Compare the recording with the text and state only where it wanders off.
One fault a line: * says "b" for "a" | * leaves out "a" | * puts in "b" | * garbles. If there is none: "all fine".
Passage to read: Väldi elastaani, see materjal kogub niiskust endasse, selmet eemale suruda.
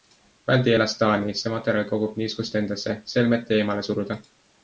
all fine